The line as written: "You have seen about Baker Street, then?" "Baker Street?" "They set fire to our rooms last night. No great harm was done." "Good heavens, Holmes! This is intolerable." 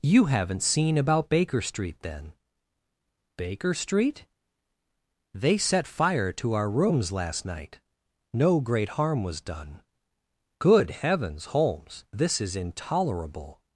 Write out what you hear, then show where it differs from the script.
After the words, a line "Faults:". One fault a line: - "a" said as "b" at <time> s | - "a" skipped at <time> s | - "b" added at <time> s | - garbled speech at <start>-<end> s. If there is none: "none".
"You haven't seen about Baker Street, then?" "Baker Street?" "They set fire to our rooms last night. No great harm was done." "Good heavens, Holmes! This is intolerable."
Faults:
- "have" said as "haven't" at 0.2 s